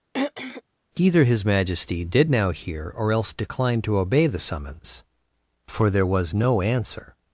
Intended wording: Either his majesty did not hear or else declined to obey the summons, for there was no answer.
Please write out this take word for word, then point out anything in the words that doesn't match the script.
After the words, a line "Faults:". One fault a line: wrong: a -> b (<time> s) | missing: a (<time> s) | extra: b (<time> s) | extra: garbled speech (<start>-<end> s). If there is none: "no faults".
Either his majesty did now hear or else declined to obey the summons, for there was no answer.
Faults:
wrong: not -> now (2.3 s)